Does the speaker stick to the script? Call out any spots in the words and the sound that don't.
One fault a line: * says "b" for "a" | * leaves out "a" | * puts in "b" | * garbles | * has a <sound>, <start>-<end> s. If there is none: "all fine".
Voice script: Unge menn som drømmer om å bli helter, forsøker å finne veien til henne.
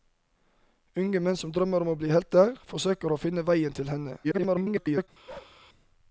* garbles
* has a bark, 5.3-5.6 s